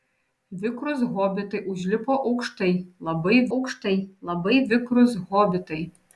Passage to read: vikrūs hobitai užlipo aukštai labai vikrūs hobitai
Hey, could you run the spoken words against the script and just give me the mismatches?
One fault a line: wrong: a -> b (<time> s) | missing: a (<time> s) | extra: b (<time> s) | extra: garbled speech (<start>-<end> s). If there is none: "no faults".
extra: aukštai labai (3.6 s)